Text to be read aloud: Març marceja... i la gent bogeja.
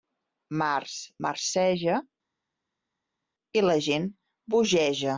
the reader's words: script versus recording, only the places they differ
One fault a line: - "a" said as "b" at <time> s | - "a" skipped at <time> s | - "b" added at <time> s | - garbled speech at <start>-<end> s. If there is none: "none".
none